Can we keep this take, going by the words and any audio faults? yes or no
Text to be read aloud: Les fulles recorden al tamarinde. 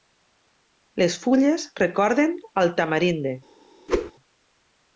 no